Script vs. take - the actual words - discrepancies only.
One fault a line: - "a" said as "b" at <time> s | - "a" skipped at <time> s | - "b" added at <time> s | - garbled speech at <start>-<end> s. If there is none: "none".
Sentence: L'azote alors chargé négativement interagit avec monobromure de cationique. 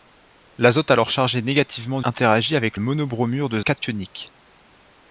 none